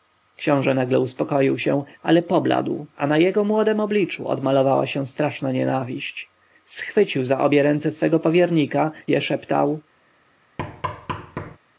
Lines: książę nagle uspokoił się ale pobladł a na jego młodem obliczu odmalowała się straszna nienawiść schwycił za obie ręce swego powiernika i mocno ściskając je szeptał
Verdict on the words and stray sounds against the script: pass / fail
fail